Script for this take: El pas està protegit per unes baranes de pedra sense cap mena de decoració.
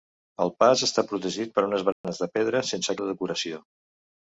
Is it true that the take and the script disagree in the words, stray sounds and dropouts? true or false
true